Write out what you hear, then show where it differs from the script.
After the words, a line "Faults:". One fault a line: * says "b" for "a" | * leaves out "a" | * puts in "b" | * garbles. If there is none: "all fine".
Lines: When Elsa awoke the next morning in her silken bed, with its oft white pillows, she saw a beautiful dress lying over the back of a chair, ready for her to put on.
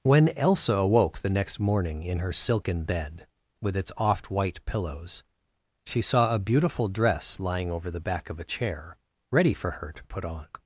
When Elsa awoke the next morning in her silken bed, with its oft white pillows, she saw a beautiful dress lying over the back of a chair, ready for her to put on.
Faults:
all fine